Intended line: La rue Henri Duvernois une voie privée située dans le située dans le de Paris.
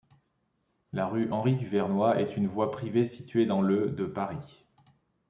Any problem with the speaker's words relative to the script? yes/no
yes